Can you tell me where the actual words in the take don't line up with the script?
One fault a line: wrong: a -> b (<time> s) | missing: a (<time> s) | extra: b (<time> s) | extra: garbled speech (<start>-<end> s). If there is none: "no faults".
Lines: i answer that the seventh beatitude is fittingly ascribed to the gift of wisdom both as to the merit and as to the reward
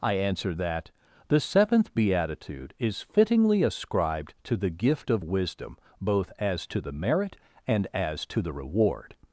no faults